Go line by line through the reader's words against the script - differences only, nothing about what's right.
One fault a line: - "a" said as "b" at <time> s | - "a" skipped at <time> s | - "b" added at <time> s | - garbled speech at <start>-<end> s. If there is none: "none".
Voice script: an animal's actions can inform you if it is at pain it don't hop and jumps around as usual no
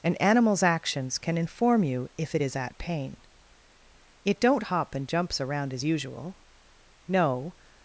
none